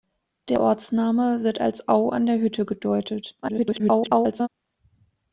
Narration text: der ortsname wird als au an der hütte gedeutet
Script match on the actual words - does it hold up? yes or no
no